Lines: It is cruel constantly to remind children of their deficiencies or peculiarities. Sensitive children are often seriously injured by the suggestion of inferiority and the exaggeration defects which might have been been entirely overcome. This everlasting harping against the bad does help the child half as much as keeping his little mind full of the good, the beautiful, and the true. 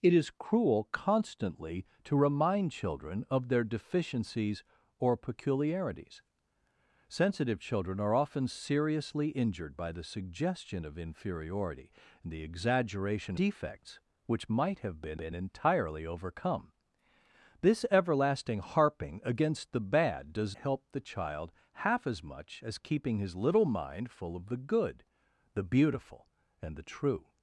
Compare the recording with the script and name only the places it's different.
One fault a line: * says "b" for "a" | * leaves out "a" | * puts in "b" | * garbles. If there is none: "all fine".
all fine